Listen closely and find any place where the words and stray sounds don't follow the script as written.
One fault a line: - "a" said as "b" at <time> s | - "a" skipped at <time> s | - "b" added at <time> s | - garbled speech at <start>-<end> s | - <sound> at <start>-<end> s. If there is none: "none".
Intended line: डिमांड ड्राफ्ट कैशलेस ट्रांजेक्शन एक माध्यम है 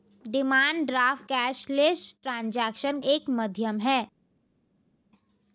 none